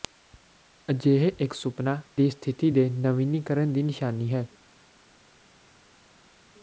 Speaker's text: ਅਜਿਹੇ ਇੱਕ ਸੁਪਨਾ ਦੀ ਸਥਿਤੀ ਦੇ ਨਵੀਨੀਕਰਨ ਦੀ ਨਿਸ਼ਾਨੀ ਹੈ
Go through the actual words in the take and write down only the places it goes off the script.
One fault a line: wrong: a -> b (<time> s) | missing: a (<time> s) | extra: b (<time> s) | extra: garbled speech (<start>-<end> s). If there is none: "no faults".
no faults